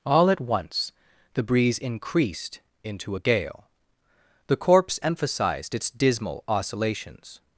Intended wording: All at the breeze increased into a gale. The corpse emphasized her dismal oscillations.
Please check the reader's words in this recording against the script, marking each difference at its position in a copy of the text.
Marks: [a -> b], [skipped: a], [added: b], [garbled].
All at [added: once] the breeze increased into a gale. The corpse emphasized [her -> its] dismal oscillations.